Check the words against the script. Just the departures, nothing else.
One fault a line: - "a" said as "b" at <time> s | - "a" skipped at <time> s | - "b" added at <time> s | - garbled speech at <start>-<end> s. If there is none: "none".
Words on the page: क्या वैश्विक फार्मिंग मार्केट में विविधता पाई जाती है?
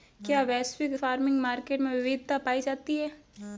none